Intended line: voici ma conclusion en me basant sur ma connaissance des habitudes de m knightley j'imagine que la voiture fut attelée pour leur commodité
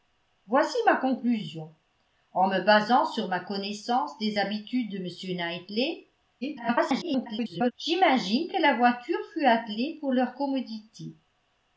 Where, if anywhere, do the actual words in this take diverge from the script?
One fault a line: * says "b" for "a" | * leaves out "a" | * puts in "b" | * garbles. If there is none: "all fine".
* garbles